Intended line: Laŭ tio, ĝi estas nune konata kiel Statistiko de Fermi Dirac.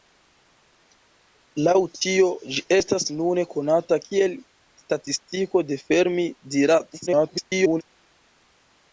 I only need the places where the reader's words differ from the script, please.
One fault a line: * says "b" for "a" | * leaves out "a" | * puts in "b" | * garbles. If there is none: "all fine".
* garbles